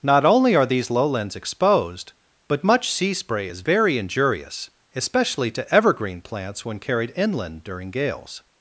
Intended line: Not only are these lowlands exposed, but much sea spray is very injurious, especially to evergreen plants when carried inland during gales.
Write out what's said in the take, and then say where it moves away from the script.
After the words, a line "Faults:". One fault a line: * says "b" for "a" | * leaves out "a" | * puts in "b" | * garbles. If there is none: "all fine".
Not only are these lowlands exposed, but much sea spray is very injurious, especially to evergreen plants when carried inland during gales.
Faults:
all fine